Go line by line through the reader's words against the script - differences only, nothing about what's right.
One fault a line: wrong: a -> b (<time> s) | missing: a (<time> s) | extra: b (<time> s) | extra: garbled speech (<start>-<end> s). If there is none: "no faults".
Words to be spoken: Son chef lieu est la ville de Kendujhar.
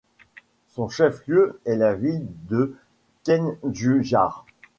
no faults